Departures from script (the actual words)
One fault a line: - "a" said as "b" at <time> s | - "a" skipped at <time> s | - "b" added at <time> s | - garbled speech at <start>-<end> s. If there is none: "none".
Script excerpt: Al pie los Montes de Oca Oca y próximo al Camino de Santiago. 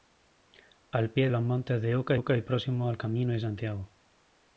none